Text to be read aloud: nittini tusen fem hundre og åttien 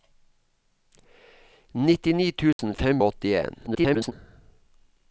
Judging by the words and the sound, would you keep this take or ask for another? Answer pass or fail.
fail